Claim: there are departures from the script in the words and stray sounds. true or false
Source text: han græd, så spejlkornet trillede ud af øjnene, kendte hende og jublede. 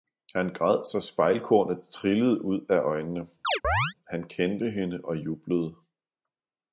true